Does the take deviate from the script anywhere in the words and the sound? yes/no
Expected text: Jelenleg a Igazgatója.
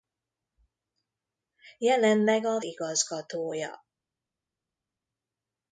no